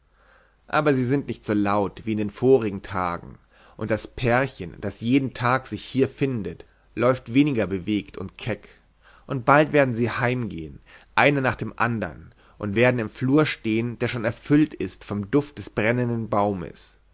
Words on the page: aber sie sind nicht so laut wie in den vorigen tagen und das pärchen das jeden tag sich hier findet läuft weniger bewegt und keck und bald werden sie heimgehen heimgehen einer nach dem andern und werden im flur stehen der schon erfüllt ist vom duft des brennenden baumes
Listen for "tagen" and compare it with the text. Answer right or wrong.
right